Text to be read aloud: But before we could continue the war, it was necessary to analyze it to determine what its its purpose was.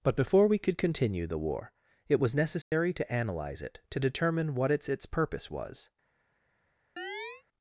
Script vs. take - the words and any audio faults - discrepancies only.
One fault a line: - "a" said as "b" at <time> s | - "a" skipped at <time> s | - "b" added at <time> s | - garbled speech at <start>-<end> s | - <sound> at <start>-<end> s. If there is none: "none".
- dropout at 2.6-2.7 s
- chirp at 7.0-7.4 s